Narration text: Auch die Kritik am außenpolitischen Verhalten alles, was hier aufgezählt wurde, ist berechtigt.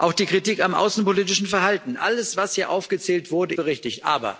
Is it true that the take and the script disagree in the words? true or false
true